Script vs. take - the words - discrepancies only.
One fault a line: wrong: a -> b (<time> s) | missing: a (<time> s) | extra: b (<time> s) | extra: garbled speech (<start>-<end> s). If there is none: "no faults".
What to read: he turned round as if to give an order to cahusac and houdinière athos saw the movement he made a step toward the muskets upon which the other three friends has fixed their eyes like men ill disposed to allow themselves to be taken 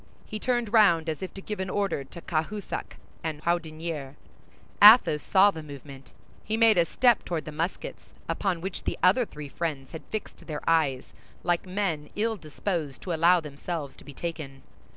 wrong: has -> had (9.9 s)